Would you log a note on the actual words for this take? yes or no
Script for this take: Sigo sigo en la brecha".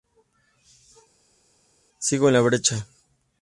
yes